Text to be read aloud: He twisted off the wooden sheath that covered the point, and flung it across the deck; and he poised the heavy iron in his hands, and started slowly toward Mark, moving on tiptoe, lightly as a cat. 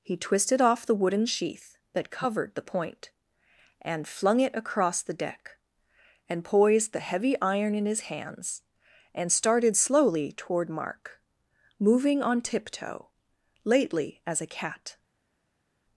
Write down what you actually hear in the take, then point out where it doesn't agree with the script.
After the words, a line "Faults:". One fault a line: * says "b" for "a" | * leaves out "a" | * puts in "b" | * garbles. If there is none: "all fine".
He twisted off the wooden sheath that covered the point, and flung it across the deck; and poised the heavy iron in his hands, and started slowly toward Mark, moving on tiptoe, lately as a cat.
Faults:
* leaves out "he"
* says "lately" for "lightly"